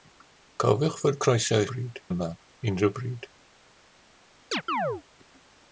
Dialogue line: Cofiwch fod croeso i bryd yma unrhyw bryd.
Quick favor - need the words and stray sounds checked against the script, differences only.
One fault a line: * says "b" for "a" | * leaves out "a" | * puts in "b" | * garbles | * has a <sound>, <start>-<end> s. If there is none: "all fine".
* has a chirp, 4.5-5.0 s